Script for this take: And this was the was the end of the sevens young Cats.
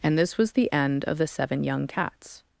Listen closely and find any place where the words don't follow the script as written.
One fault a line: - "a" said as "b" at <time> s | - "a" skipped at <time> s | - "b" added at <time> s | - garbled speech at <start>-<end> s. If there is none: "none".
- "was the" skipped at 0.7 s
- "sevens" said as "seven" at 1.3 s